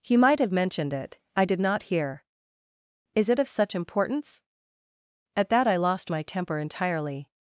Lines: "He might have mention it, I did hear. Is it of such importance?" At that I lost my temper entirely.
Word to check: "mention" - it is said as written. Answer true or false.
false